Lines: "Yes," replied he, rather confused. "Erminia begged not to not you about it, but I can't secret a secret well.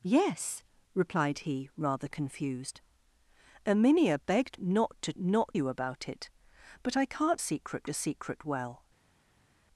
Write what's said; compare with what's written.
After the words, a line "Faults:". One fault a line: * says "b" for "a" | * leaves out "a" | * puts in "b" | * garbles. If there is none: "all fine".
"Yes," replied he, rather confused. "Erminia begged not to not you about it, but I can't secret a secret well.
Faults:
all fine